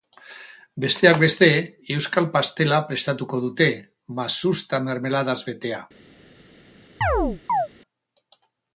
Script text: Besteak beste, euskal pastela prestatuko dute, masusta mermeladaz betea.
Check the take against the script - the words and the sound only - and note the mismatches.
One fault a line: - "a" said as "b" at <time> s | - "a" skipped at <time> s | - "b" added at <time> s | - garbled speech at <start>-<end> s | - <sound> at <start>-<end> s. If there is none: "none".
- chirp at 7.0-7.7 s